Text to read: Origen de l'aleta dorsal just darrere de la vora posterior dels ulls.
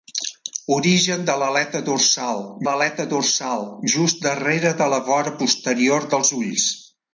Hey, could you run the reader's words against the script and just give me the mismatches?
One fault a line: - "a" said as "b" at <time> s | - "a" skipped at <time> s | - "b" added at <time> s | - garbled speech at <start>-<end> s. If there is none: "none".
- "l'aleta dorsal" added at 2.7 s